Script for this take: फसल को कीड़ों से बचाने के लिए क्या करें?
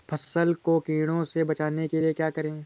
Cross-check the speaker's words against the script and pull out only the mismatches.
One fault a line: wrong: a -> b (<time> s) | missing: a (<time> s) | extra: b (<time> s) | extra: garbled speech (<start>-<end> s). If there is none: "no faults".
no faults